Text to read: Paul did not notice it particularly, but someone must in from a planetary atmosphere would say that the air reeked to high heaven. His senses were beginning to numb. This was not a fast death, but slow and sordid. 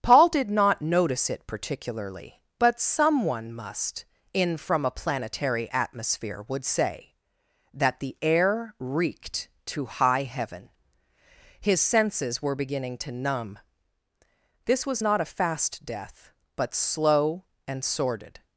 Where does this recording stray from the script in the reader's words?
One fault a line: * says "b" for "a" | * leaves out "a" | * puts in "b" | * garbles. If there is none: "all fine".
all fine